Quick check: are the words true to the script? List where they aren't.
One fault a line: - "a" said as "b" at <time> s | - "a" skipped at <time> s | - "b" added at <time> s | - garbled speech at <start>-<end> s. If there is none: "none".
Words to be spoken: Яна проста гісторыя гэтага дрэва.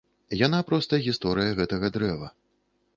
none